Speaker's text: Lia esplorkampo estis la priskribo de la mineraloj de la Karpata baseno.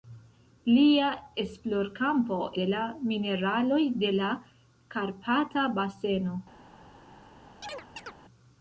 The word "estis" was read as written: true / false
false